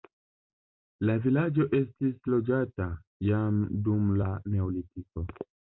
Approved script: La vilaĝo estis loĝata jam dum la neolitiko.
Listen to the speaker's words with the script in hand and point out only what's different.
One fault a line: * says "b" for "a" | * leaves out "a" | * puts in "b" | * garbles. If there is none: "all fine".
all fine